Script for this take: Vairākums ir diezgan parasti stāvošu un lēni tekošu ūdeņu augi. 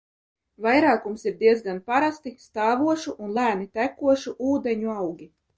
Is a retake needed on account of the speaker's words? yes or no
no